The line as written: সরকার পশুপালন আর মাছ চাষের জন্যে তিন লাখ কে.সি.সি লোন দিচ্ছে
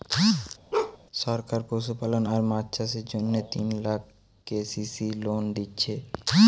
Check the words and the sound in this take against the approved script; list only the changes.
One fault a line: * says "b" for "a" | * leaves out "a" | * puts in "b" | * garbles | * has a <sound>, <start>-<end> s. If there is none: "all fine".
* has a bark, 0.7-1.0 s